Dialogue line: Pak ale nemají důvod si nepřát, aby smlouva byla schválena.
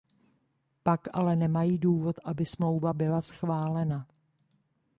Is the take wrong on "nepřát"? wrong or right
wrong